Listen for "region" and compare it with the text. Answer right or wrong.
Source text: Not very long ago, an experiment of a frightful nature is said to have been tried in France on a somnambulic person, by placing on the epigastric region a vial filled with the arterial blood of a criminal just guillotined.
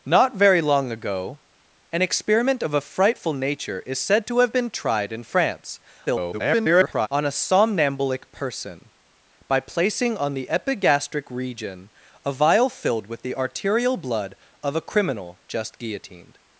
right